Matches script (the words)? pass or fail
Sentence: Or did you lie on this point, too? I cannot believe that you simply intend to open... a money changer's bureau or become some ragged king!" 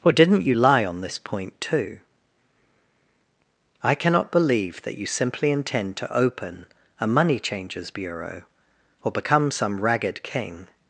fail